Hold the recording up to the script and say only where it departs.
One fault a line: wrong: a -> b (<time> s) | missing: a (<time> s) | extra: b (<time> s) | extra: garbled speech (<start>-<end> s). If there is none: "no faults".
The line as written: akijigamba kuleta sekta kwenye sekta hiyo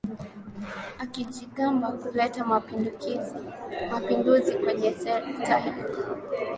wrong: sekta -> mapinduzi (3.9 s)